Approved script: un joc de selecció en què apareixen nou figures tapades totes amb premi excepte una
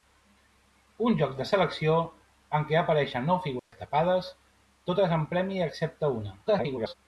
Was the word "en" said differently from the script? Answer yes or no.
no